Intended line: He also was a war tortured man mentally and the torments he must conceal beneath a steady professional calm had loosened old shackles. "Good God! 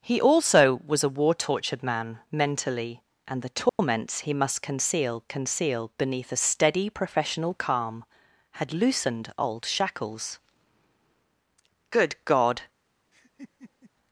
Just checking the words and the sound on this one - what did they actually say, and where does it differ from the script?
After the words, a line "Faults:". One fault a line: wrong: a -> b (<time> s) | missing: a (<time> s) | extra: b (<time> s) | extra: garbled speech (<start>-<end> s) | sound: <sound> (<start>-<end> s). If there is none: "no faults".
He also was a war tortured man mentally and the torments he must conceal conceal beneath a steady professional calm had loosened old shackles. "Good God!
Faults:
sound: dropout (3.7-3.8 s)
extra: conceal (5.3 s)
sound: laugh (13.1-13.9 s)